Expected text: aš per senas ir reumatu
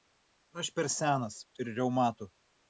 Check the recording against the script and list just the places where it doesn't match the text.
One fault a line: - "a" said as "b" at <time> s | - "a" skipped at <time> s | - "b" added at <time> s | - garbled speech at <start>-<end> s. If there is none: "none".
none